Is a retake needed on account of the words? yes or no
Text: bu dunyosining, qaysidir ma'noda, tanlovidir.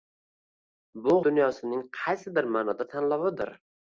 no